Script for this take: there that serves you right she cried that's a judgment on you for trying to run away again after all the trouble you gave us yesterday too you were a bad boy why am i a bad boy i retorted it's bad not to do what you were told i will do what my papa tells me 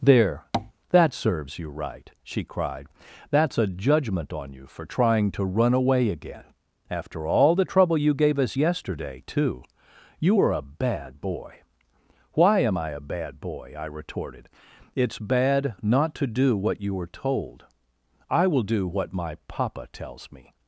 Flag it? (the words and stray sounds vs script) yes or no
yes